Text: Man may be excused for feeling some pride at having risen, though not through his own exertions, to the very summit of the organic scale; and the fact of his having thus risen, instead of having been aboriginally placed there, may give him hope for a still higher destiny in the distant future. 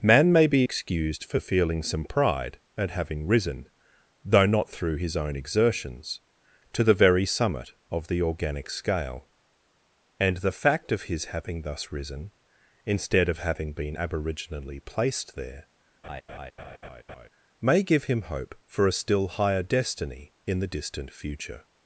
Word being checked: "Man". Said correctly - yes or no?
yes